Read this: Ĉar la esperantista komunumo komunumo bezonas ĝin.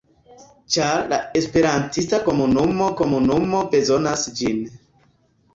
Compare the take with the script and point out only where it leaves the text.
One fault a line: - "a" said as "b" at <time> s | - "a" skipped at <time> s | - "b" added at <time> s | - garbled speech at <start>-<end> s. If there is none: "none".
none